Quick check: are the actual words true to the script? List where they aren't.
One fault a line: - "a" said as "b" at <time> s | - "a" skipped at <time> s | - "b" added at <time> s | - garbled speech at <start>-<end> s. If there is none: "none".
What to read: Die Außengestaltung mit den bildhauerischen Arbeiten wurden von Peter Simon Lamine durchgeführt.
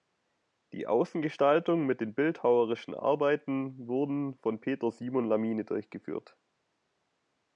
none